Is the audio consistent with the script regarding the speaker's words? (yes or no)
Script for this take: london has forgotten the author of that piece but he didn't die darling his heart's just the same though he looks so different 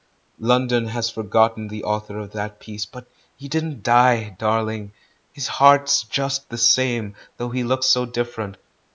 yes